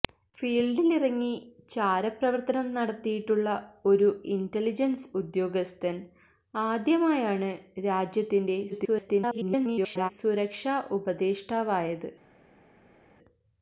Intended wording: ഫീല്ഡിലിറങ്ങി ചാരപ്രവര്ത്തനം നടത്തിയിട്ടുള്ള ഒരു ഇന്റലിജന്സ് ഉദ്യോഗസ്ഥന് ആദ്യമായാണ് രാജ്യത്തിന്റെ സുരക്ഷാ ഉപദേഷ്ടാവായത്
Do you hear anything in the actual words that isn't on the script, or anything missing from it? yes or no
yes